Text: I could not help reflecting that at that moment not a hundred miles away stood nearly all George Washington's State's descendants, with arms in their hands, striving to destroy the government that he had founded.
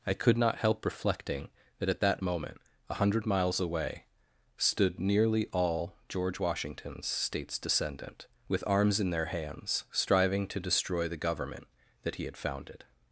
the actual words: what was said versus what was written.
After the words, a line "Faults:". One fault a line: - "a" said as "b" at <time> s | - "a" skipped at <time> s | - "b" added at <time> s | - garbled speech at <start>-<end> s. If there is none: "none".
I could not help reflecting that at that moment a hundred miles away stood nearly all George Washington's State's descendant, with arms in their hands, striving to destroy the government that he had founded.
Faults:
- "not" skipped at 2.6 s
- "descendants" said as "descendant" at 7.6 s